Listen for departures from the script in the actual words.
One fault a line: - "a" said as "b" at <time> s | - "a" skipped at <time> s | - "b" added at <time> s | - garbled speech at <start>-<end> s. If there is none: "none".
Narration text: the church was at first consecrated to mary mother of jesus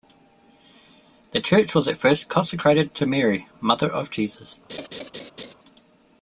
none